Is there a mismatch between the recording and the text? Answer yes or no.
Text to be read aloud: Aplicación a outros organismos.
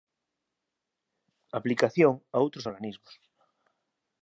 no